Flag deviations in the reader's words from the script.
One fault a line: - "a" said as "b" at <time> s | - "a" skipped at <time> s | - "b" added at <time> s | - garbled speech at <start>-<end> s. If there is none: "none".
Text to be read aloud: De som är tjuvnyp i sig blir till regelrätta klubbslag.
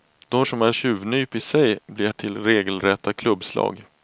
none